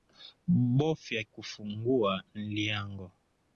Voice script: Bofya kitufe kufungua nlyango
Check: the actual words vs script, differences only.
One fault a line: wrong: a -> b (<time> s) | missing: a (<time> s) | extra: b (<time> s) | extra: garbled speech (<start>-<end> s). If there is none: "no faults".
missing: kitufe (1.2 s)